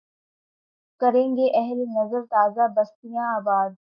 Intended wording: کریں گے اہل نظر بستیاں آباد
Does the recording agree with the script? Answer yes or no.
no